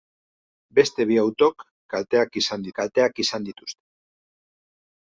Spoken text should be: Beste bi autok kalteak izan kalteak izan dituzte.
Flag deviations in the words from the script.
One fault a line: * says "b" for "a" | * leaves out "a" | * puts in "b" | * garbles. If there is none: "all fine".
all fine